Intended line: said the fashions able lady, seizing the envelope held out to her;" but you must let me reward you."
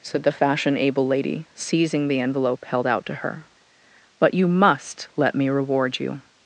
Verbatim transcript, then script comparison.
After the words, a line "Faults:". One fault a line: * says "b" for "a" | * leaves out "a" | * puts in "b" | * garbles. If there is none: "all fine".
said the fashion able lady, seizing the envelope held out to her;" but you must let me reward you."
Faults:
* says "fashion" for "fashions"